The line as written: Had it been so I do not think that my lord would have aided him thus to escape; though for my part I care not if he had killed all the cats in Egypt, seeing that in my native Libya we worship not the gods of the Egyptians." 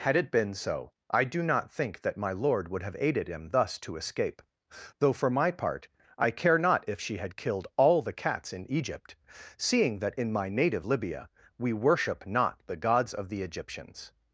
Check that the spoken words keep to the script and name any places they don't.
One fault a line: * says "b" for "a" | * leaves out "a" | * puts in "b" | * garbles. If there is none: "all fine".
* says "she" for "he"